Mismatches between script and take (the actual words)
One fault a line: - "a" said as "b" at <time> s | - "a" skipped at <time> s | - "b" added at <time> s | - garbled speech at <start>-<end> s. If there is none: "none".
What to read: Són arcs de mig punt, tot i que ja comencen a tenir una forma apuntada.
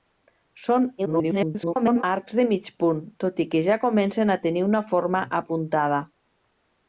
- garbled speech at 1.0-2.0 s